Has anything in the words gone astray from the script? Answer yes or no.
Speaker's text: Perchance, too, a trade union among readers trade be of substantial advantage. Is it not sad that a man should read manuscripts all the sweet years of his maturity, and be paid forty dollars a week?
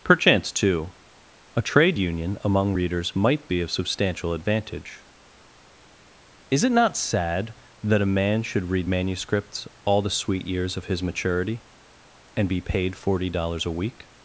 yes